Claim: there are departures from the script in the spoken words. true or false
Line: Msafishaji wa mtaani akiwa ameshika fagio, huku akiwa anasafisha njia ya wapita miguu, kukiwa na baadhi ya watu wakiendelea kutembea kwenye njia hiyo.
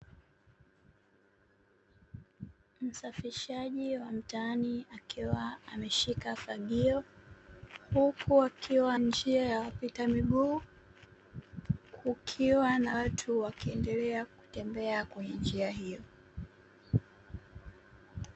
true